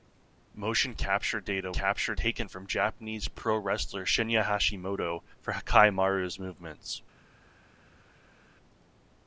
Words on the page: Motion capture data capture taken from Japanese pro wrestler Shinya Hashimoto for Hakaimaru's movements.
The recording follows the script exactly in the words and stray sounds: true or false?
true